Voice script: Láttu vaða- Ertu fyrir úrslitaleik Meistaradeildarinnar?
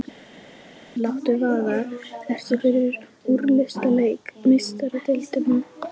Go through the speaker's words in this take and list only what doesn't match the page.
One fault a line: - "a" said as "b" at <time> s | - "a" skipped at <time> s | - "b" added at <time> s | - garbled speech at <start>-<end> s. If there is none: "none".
none